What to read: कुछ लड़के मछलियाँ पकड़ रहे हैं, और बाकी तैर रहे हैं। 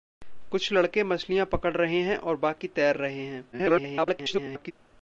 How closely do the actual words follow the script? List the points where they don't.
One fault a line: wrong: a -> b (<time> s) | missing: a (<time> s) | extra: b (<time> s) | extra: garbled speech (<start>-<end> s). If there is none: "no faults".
extra: garbled speech (3.5-4.7 s)